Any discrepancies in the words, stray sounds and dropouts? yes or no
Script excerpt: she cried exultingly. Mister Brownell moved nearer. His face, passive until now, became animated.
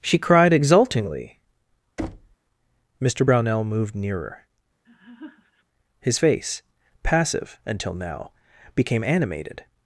yes